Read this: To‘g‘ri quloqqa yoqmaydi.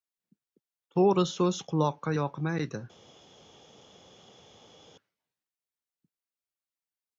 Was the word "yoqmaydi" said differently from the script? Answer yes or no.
no